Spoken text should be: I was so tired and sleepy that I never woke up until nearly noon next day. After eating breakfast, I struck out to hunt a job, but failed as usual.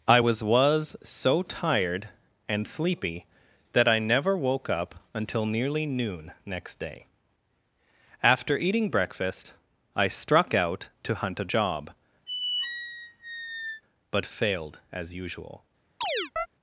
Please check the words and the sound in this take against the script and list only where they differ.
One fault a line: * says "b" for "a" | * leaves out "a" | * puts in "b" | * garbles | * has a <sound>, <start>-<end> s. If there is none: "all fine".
* puts in "was"
* has a squeak, 12.3-13.8 s
* has a chirp, 16.0-16.5 s